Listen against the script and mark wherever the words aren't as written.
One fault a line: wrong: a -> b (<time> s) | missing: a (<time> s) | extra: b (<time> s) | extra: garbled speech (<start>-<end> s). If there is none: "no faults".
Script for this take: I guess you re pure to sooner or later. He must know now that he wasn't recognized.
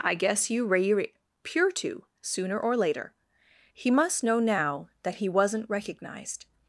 no faults